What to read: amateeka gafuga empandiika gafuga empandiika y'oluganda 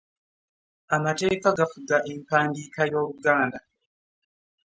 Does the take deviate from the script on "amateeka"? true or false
false